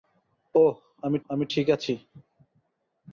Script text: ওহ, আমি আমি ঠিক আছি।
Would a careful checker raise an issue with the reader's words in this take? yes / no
no